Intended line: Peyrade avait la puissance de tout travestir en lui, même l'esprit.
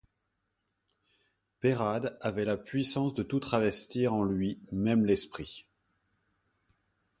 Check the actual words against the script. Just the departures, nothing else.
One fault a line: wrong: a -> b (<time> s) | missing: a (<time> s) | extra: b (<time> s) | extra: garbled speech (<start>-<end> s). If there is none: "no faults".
no faults